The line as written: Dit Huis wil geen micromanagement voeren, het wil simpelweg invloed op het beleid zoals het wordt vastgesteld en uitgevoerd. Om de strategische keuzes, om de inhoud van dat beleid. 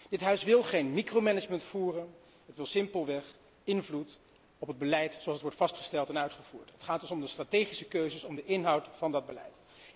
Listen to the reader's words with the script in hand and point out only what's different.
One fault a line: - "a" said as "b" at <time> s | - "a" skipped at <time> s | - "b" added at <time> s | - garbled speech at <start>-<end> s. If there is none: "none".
- "Het gaat dus" added at 6.7 s